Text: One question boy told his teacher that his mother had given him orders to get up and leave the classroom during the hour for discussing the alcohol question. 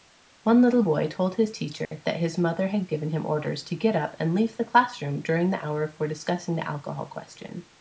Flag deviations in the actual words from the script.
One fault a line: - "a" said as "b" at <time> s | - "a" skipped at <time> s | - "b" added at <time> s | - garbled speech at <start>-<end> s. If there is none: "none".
- "question" said as "little" at 0.6 s